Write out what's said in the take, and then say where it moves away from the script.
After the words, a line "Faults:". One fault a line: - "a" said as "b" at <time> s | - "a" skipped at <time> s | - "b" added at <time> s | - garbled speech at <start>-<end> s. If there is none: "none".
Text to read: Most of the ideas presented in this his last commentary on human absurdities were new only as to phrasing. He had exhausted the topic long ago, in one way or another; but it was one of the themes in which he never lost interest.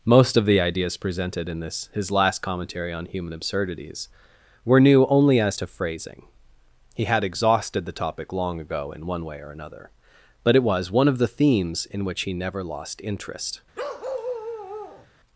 Most of the ideas presented in this his last commentary on human absurdities were new only as to phrasing. He had exhausted the topic long ago, in one way or another; but it was one of the themes in which he never lost interest.
Faults:
none